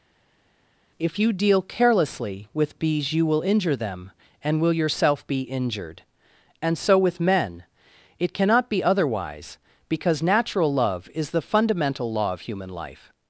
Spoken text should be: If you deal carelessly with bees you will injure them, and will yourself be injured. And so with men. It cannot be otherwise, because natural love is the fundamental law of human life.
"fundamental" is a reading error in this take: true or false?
false